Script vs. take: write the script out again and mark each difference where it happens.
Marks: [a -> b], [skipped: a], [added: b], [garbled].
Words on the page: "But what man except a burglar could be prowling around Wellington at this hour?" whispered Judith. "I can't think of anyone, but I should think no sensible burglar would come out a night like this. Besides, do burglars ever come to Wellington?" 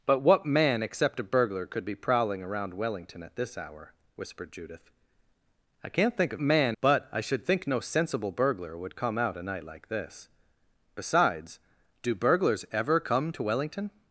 "But what man except a burglar could be prowling around Wellington at this hour?" whispered Judith. "I can't think of [anyone, -> man] but I should think no sensible burglar would come out a night like this. Besides, do burglars ever come to Wellington?"